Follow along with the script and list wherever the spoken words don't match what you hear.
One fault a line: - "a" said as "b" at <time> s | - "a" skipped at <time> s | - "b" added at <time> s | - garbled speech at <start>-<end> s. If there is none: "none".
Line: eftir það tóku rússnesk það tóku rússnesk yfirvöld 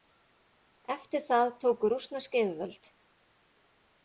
- "það tóku rússnesk" skipped at 2.4 s